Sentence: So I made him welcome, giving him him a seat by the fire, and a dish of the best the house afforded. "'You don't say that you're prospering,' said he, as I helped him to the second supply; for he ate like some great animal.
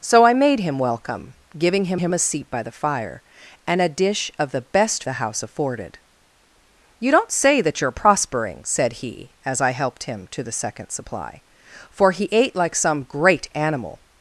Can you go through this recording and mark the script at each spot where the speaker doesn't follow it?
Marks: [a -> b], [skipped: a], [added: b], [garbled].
So I made him welcome, giving him him a seat by the fire, and a dish of the best the house afforded. "'You don't say that you're prospering,' said he, as I helped him to the second supply; for he ate like some great animal.